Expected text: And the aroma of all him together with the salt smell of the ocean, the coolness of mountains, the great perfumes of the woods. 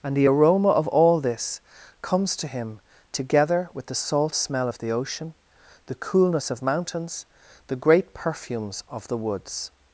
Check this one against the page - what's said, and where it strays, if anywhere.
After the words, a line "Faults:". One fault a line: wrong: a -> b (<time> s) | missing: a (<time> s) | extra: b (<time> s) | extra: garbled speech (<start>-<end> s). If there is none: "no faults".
And the aroma of all this comes to him together with the salt smell of the ocean, the coolness of mountains, the great perfumes of the woods.
Faults:
extra: this comes to (1.2 s)